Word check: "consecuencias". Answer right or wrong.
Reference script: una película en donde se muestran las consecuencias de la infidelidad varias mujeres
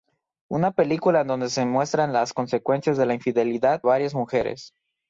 right